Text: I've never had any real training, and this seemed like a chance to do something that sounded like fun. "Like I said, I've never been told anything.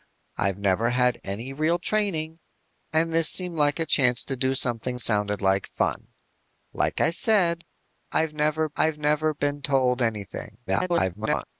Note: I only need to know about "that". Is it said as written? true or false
false